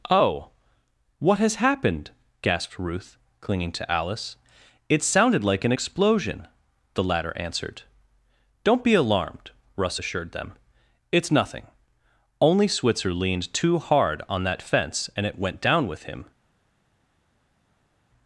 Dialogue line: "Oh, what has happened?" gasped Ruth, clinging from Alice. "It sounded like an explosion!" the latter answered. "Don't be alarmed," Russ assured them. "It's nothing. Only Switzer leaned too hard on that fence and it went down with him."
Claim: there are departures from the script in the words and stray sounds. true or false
true